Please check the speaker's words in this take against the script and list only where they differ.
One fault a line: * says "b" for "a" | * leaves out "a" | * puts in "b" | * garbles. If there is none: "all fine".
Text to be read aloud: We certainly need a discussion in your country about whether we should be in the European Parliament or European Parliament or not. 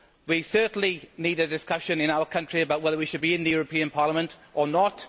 * says "our" for "your"
* leaves out "European Parliament or"